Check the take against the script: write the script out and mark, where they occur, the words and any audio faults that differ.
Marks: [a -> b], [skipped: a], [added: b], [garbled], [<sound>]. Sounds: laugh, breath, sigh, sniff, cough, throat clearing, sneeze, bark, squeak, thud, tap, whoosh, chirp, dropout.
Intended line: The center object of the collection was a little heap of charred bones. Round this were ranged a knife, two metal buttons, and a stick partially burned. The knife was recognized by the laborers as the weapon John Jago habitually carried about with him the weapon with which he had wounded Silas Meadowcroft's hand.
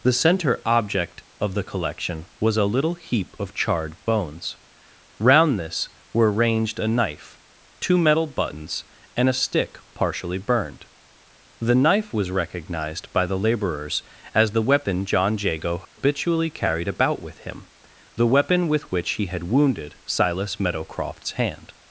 The center object of the collection was a little heap of charred bones. Round this were ranged a knife, two metal buttons, and a stick partially burned. The knife was recognized by the laborers as the weapon John Jago habitually [dropout] carried about with him the weapon with which he had wounded Silas Meadowcroft's hand.